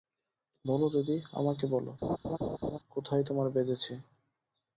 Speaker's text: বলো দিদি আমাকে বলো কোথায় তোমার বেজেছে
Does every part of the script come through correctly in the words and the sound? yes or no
no